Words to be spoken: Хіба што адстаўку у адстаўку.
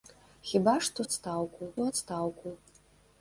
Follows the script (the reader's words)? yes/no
yes